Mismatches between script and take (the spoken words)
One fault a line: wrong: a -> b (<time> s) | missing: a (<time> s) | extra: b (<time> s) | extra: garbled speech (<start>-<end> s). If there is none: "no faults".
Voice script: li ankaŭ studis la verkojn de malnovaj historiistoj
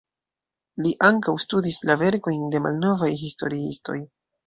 no faults